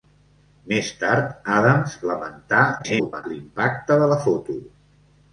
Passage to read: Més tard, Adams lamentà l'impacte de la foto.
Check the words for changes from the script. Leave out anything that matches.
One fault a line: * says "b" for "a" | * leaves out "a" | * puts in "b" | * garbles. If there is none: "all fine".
* garbles